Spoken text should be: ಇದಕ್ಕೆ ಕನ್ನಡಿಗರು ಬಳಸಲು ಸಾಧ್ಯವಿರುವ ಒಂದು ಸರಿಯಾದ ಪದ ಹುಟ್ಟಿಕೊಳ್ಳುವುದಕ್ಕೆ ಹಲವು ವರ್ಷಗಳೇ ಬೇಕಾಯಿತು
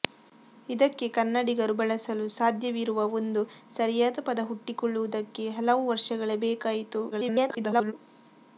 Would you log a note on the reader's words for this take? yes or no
yes